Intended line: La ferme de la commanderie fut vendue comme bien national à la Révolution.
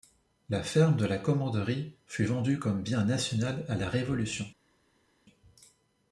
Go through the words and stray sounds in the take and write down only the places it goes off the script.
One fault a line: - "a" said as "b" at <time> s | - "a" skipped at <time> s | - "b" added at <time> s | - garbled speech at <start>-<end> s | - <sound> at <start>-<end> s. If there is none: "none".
none